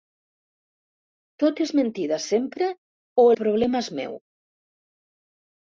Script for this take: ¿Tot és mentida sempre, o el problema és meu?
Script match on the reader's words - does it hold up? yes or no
no